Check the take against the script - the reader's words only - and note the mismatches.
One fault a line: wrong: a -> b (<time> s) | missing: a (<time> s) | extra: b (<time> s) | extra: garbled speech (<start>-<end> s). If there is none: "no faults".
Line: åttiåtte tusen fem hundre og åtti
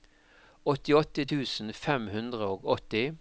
no faults